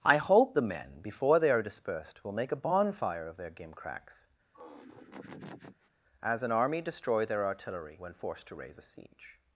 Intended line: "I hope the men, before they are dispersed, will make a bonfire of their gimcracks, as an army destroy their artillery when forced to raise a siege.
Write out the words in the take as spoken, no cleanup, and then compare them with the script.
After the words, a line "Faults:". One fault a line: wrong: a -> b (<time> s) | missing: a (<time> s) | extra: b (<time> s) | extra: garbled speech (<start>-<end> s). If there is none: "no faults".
"I hope the men, before they are dispersed, will make a bonfire of their gimcracks, as an army destroy their artillery when forced to raise a siege.
Faults:
no faults